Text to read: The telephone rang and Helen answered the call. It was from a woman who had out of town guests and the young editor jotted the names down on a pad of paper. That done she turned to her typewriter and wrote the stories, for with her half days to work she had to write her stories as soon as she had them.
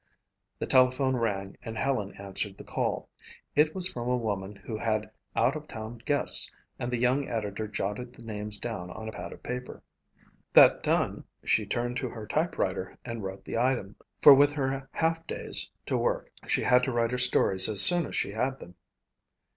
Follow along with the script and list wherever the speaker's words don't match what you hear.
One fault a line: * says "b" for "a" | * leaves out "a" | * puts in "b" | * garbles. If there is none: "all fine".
* says "item" for "stories"